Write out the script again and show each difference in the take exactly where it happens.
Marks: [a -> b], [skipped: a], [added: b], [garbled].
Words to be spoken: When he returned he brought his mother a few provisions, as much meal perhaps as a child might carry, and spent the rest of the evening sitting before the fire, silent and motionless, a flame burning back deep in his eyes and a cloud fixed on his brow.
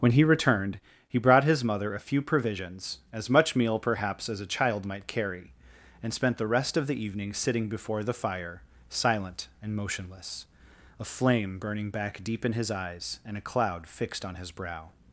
When he returned he brought his mother a few provisions, as much meal perhaps as a child might carry, and spent the rest of the evening sitting before the fire, silent and motionless, a flame burning back deep in his eyes and a cloud fixed on his brow.